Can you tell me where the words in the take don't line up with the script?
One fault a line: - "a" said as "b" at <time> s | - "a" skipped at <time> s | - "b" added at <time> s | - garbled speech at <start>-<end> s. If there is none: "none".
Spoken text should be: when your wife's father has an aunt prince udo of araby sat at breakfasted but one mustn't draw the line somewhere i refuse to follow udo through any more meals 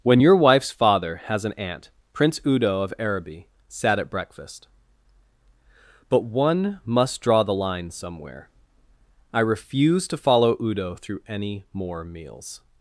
- "breakfasted" said as "breakfast" at 4.1 s
- "mustn't" said as "must" at 6.8 s